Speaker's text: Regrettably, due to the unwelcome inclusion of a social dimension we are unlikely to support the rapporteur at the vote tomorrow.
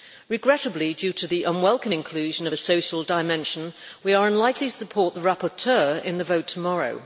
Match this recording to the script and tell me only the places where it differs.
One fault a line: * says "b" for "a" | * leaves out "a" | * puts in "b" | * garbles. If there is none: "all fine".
* says "in" for "at"